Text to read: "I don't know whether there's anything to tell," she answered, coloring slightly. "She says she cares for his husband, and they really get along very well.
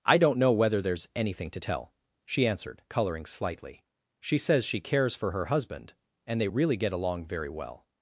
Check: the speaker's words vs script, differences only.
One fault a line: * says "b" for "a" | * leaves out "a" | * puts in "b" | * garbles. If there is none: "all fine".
* says "her" for "his"